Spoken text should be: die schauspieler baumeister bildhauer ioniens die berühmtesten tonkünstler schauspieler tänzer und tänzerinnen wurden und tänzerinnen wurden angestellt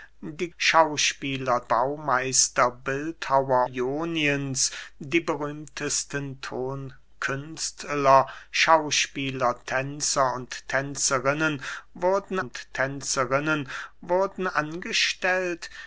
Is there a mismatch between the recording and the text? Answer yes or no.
no